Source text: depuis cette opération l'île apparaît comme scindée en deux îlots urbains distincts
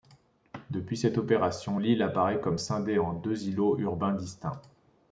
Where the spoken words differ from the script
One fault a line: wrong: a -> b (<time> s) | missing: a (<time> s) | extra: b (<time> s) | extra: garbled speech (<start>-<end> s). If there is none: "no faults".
no faults